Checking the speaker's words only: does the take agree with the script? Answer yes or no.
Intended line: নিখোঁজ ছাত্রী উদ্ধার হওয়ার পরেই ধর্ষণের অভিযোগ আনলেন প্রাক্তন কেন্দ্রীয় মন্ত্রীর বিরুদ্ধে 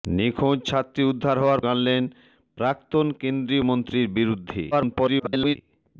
no